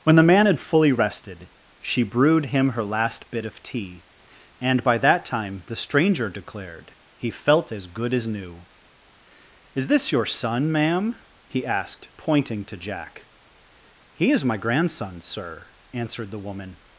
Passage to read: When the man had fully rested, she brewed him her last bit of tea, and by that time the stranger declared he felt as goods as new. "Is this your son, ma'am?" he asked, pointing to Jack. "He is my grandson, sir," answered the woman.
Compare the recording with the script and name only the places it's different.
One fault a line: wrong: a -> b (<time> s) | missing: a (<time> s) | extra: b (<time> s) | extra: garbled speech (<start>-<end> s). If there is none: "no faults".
wrong: goods -> good (7.9 s)